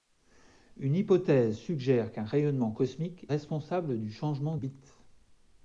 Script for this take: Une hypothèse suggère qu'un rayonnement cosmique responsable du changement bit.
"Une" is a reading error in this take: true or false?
false